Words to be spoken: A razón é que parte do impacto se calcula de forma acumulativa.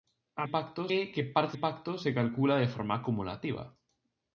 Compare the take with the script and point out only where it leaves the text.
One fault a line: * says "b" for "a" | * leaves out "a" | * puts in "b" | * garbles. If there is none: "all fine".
* says "impacto" for "razón"
* leaves out "do"